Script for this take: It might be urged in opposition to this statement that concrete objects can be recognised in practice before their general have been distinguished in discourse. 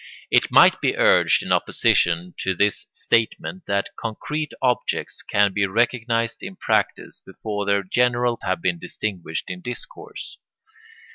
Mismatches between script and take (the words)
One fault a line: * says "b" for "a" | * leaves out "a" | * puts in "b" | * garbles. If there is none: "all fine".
all fine